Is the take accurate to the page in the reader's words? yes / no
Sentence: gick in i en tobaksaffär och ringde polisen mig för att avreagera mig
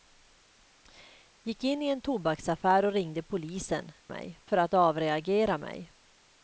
yes